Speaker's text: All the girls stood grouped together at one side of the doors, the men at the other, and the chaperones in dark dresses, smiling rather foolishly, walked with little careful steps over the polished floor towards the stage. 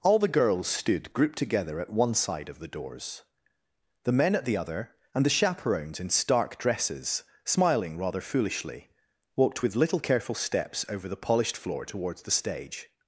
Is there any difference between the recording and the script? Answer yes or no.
yes